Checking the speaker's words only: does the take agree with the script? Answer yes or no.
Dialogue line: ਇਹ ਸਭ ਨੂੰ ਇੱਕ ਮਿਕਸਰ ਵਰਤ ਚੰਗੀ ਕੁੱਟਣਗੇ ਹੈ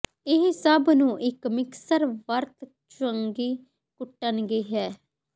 yes